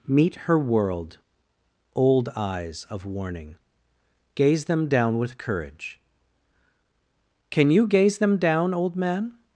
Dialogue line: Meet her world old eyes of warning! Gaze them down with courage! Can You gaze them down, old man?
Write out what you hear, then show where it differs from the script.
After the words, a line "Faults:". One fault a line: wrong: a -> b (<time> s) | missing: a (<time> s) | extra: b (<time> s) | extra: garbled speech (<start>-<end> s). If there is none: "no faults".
Meet her world old eyes of warning! Gaze them down with courage! Can You gaze them down, old man?
Faults:
no faults